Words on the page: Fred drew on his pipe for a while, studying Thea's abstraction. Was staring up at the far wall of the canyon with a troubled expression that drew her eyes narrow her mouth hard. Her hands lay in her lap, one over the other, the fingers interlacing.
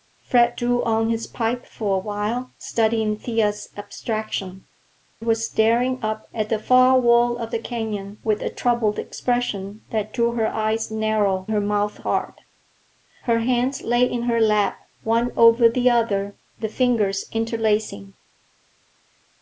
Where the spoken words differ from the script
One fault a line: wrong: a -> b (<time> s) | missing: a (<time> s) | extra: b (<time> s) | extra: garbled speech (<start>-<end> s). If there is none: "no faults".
no faults